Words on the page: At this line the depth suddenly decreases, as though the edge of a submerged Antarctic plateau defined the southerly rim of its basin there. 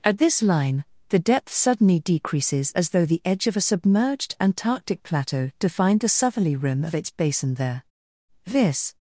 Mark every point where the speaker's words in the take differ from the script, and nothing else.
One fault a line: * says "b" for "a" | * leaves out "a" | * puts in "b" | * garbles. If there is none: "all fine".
* puts in "This"